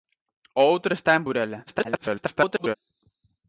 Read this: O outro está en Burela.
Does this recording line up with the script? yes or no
no